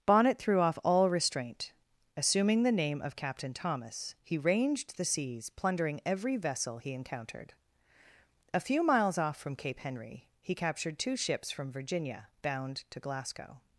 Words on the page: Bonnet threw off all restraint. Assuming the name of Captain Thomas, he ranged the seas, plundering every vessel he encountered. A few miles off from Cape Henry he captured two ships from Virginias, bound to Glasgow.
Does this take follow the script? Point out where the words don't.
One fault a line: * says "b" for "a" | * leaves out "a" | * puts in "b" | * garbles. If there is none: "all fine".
* says "Virginia" for "Virginias"